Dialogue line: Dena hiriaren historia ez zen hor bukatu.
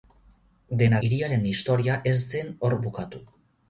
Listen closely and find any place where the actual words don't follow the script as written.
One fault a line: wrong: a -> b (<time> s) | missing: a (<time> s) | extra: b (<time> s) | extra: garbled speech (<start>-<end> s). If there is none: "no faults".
no faults